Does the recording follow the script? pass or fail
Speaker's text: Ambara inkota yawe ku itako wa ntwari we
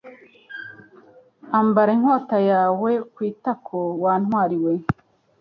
pass